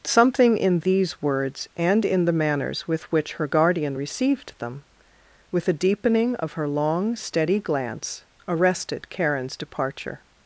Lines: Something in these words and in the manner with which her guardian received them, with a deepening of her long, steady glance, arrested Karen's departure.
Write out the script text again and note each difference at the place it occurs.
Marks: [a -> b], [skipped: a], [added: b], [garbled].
Something in these words and in the [manner -> manners] with which her guardian received them, with a deepening of her long, steady glance, arrested Karen's departure.